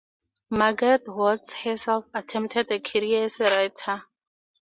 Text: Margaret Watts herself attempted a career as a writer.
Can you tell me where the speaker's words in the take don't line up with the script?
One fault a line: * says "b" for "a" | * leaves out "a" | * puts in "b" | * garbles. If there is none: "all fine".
all fine